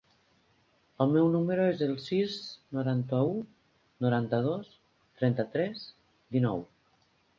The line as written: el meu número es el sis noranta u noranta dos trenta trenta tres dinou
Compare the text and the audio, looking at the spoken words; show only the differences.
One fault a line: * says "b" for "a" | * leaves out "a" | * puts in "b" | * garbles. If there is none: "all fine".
* leaves out "trenta"